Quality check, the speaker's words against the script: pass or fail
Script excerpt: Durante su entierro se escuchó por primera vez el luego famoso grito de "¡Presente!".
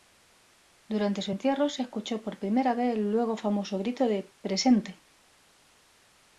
pass